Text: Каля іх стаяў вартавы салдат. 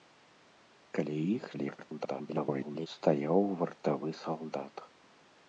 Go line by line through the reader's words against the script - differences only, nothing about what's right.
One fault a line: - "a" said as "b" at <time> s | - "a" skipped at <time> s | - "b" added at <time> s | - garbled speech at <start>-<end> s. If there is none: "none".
- garbled speech at 1.5-2.9 s